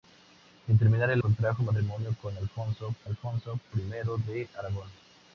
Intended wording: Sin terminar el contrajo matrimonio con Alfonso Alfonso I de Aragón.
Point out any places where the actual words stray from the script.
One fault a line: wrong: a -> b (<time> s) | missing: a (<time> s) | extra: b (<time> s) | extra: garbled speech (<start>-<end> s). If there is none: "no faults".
no faults